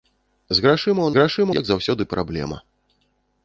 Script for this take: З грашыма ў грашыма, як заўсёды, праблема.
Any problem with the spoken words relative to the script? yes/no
no